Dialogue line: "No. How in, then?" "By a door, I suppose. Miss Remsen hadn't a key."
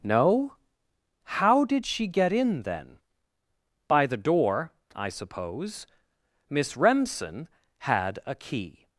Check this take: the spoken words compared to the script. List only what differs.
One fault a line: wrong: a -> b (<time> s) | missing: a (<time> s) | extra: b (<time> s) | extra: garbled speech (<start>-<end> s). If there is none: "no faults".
extra: did she get (1.6 s)
wrong: a -> the (4.1 s)
wrong: hadn't -> had (7.8 s)